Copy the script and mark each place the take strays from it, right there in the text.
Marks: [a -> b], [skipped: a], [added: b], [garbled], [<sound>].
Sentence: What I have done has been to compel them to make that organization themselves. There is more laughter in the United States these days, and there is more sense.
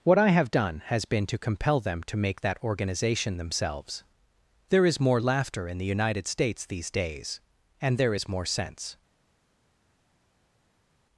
What I have done has been to compel them to make that organization themselves. There is more laughter in the United States these days, and there is more sense.